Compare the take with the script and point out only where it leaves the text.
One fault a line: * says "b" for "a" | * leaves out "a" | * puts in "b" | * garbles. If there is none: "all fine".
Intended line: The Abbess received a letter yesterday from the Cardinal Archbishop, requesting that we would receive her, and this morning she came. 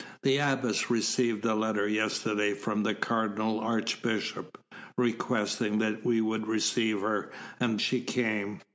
* leaves out "this morning"